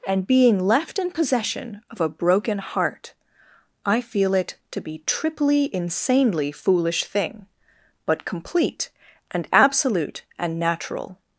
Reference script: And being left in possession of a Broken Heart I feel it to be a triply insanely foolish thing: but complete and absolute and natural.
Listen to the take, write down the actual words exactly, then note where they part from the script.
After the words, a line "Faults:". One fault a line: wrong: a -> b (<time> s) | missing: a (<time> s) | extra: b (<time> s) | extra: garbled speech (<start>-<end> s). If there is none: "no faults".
And being left in possession of a Broken Heart I feel it to be triply insanely foolish thing: but complete and absolute and natural.
Faults:
missing: a (5.0 s)